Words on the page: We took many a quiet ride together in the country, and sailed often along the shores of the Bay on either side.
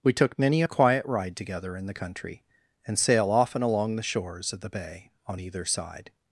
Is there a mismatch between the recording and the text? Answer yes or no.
yes